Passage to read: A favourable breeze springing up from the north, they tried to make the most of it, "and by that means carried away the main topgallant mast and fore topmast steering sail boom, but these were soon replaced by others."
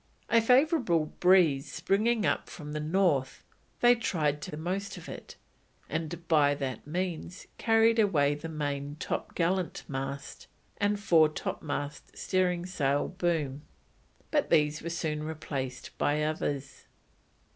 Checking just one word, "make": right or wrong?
wrong